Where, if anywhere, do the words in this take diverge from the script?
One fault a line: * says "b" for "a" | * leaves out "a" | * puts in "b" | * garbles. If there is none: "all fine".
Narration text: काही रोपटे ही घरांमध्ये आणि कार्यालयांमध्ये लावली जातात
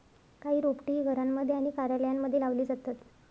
all fine